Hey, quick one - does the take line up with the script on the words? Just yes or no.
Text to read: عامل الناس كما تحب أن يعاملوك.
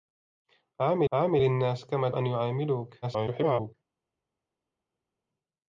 no